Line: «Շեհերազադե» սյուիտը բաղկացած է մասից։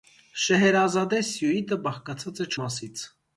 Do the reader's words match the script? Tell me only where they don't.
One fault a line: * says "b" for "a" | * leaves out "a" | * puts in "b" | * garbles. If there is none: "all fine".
all fine